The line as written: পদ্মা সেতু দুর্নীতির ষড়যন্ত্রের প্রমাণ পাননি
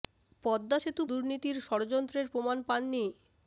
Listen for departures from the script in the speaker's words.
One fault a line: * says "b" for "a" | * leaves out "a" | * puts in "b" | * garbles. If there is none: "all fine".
all fine